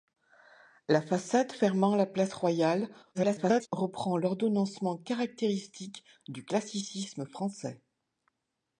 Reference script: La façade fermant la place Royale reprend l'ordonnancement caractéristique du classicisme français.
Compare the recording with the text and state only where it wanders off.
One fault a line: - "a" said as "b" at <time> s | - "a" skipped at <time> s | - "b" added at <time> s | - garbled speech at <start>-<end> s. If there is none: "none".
- garbled speech at 3.1-3.7 s